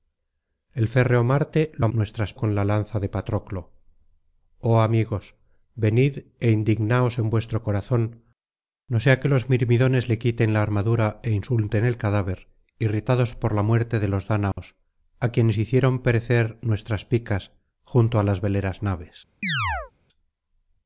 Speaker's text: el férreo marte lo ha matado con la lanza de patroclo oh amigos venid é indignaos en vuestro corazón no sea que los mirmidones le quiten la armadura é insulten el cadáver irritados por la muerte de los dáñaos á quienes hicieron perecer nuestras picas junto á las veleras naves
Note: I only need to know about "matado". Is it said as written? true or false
false